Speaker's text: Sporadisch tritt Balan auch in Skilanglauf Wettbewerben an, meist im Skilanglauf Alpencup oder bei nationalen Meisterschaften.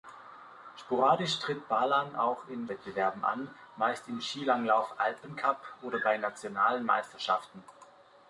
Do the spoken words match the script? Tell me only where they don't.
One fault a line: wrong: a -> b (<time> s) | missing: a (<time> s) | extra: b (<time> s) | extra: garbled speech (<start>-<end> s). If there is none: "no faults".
missing: Skilanglauf (2.7 s)